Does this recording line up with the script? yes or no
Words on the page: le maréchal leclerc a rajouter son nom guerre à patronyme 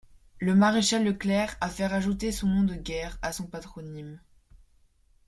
no